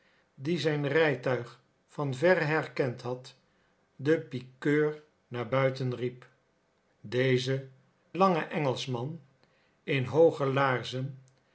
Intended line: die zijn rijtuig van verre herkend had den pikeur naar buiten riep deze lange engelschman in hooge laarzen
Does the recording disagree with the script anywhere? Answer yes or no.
no